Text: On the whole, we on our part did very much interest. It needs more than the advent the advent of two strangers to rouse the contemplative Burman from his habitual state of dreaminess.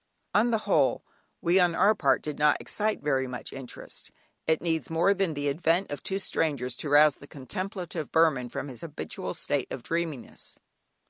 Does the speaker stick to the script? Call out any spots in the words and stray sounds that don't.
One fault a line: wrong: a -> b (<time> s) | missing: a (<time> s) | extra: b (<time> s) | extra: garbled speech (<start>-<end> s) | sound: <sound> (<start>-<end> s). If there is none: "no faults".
extra: not excite (2.4 s)
missing: the advent (5.9 s)